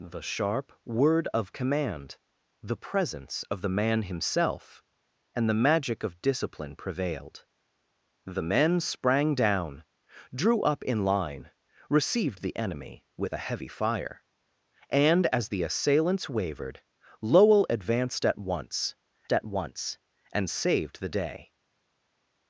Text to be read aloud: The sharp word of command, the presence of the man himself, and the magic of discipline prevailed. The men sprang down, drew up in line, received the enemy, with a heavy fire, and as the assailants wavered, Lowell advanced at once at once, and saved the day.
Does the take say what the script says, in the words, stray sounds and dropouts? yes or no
yes